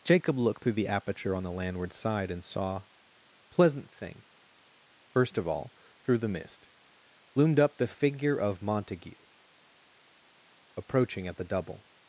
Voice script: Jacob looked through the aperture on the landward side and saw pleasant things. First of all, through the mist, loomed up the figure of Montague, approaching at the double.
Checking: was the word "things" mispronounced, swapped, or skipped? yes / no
yes